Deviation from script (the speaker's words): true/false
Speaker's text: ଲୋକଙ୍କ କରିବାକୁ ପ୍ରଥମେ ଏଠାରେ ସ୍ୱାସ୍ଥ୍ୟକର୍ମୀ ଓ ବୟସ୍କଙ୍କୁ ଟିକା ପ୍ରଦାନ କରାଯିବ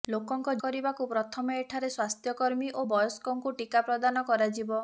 false